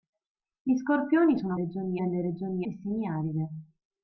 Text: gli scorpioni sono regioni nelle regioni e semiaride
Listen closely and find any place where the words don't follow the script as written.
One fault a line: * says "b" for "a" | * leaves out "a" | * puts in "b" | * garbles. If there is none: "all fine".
all fine